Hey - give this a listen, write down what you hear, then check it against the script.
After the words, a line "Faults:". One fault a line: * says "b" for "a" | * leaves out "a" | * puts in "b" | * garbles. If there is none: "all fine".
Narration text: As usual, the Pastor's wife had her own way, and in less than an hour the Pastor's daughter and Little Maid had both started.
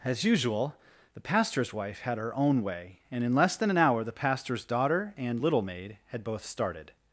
As usual, the Pastor's wife had her own way, and in less than an hour the Pastor's daughter and Little Maid had both started.
Faults:
all fine